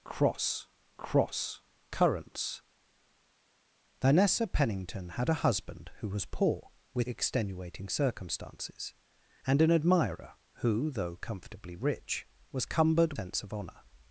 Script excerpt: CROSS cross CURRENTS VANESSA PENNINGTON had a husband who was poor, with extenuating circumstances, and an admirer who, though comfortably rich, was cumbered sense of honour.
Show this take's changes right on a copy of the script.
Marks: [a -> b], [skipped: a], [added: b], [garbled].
CROSS cross CURRENTS VANESSA PENNINGTON had a husband who was poor, with extenuating circumstances, and an admirer who, though comfortably rich, was cumbered sense of honour.